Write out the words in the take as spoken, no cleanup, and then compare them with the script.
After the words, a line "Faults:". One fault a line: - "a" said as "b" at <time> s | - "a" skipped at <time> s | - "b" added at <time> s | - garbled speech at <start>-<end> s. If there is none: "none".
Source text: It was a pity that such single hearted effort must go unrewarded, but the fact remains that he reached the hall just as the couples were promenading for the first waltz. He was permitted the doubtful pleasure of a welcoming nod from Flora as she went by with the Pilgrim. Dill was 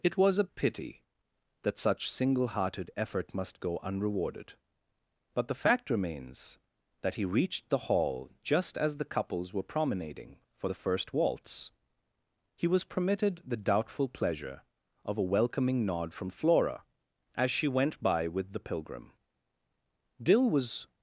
It was a pity that such single hearted effort must go unrewarded, but the fact remains that he reached the hall just as the couples were promenading for the first waltz. He was permitted the doubtful pleasure of a welcoming nod from Flora as she went by with the Pilgrim. Dill was
Faults:
none